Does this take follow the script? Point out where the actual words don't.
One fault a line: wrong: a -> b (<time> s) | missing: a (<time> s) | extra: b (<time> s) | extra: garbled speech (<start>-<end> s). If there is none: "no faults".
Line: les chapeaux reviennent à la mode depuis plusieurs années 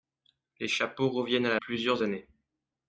missing: mode depuis (1.6 s)